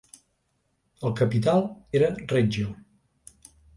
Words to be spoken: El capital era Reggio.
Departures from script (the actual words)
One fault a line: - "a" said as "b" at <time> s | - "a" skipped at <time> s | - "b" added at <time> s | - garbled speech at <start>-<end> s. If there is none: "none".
none